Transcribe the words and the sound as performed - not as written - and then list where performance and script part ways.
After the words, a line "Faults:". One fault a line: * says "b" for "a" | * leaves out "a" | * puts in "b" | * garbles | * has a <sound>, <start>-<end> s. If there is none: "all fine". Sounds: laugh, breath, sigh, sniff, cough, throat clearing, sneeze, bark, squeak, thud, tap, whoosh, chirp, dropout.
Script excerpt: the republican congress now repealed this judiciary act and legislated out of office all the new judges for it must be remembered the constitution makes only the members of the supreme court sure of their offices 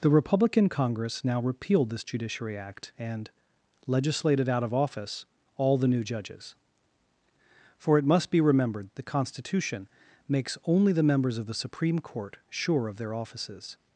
the republican congress now repealed this judiciary act and legislated out of office all the new judges for it must be remembered the constitution makes only the members of the supreme court sure of their offices
Faults:
all fine